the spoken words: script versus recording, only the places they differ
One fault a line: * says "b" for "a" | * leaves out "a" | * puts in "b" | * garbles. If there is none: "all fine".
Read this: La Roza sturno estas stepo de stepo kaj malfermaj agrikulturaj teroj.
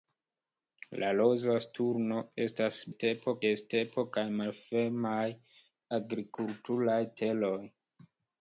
all fine